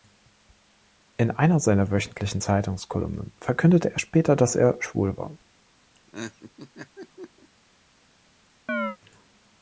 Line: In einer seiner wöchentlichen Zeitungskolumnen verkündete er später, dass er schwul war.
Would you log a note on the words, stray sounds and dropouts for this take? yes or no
yes